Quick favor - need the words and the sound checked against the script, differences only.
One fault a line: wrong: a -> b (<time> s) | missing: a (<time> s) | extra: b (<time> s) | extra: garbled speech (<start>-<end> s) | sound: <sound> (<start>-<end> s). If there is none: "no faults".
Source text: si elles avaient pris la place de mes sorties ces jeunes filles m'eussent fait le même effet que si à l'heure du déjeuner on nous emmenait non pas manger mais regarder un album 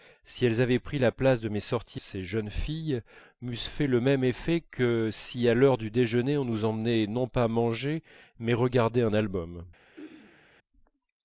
sound: throat clearing (10.0-10.5 s)